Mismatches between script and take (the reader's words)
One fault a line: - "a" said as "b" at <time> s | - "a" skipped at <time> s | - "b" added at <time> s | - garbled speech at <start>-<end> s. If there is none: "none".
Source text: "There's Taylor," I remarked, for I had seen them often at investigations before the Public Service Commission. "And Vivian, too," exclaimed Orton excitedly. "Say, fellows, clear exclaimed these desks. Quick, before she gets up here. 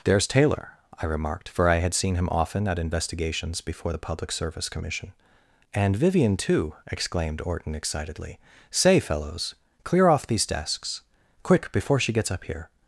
- "them" said as "him" at 2.1 s
- "exclaimed" said as "off" at 10.1 s